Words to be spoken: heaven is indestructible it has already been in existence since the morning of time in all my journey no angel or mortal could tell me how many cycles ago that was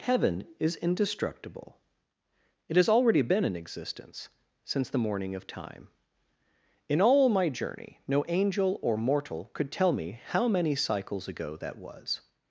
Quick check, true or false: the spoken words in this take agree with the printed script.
true